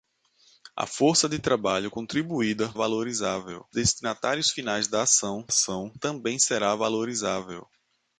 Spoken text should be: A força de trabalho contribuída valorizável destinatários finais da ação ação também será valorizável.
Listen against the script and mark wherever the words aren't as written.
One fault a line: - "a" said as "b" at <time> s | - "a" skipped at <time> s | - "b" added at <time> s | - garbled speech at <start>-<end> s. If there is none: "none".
none